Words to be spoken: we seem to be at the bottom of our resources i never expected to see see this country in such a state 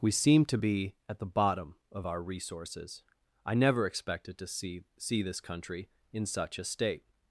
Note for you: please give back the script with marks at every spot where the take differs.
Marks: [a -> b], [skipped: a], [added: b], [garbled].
we seem to be at the bottom of our resources i never expected to see see this country in such a state